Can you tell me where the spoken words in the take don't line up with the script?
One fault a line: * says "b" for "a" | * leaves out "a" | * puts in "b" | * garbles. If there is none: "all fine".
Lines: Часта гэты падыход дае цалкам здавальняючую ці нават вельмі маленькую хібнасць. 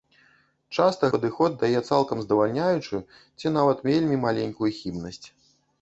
* leaves out "гэты"